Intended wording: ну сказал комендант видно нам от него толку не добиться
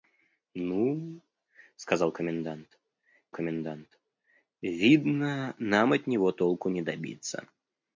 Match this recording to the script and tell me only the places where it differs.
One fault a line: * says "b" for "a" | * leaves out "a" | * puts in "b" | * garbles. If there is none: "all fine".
* puts in "комендант"